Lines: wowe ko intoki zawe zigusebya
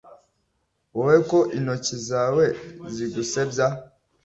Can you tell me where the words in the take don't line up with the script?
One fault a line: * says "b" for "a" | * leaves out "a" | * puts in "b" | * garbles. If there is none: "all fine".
all fine